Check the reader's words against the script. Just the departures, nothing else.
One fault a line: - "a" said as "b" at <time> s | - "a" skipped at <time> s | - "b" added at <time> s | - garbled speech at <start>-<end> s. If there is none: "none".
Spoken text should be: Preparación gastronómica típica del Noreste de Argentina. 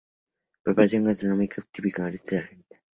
- "del" skipped at 2.0 s